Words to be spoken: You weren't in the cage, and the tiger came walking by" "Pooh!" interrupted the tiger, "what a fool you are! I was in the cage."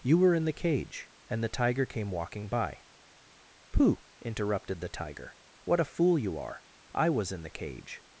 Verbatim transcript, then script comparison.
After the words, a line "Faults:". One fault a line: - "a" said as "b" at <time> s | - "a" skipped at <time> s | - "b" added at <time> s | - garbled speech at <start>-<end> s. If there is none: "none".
You were in the cage, and the tiger came walking by" "Pooh!" interrupted the tiger, "what a fool you are! I was in the cage."
Faults:
- "weren't" said as "were" at 0.2 s